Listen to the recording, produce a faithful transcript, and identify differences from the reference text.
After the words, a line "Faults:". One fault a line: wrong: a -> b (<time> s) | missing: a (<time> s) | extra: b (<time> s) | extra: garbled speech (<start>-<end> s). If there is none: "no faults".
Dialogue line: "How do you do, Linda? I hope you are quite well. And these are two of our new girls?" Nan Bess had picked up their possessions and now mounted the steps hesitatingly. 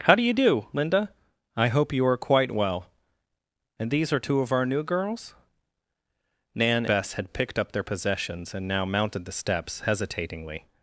"How do you do, Linda? I hope you are quite well. And these are two of our new girls?" Nan Bess had picked up their possessions and now mounted the steps hesitatingly.
Faults:
no faults